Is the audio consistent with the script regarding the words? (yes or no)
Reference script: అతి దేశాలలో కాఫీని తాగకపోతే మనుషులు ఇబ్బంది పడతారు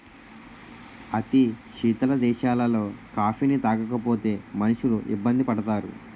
no